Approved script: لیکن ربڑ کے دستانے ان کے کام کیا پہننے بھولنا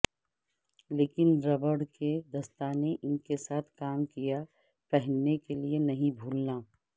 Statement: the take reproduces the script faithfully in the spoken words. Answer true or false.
false